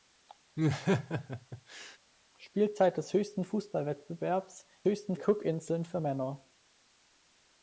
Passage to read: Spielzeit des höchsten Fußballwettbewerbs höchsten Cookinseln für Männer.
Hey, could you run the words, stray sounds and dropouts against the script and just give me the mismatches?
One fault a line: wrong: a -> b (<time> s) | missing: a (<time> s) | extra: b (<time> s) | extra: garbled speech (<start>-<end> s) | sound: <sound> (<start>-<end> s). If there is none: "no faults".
sound: laugh (0.6-2.0 s)